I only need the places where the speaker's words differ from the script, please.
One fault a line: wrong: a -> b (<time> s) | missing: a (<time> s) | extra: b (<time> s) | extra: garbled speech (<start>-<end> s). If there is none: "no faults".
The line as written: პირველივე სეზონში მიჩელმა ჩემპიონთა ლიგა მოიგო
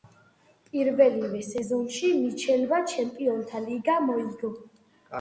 no faults